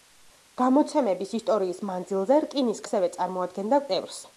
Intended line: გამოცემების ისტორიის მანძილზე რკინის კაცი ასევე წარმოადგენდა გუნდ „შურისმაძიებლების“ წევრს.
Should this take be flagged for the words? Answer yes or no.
yes